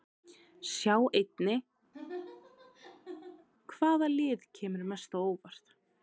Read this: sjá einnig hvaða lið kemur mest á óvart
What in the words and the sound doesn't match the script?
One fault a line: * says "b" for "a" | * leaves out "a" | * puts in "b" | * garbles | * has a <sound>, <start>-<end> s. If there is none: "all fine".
* has a laugh, 1.9-3.5 s